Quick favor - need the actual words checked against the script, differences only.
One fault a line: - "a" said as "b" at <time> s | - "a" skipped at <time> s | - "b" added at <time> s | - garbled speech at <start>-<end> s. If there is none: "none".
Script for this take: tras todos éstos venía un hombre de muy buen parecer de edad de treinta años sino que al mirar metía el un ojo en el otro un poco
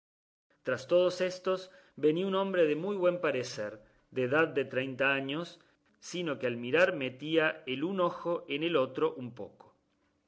none